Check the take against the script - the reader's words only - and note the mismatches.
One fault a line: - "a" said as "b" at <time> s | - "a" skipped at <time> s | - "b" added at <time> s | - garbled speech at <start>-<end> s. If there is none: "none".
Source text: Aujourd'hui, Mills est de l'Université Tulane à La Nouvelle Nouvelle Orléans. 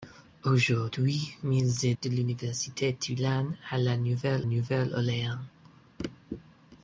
none